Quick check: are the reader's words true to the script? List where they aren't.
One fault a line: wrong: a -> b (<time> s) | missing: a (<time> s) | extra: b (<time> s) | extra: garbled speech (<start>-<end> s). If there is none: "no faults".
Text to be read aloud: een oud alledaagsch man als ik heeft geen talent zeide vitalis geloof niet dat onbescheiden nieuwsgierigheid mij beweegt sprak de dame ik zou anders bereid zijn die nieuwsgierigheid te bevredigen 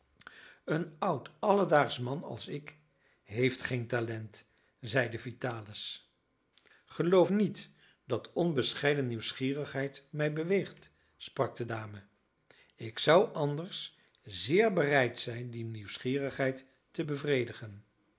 extra: zeer (14.2 s)